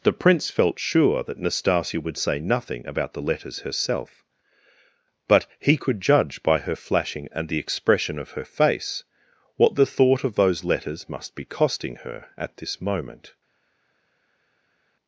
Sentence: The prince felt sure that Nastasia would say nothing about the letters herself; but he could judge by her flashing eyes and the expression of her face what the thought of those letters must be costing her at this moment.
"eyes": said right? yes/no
no